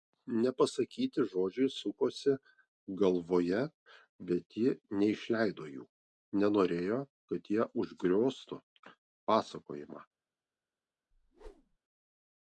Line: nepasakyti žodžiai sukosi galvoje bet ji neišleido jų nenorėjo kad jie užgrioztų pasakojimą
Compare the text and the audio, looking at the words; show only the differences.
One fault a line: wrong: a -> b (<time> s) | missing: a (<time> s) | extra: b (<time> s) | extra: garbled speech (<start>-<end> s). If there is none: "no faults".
no faults